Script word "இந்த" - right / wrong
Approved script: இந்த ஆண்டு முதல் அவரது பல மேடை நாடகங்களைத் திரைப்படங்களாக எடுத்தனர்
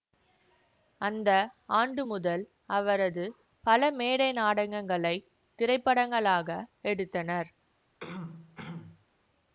wrong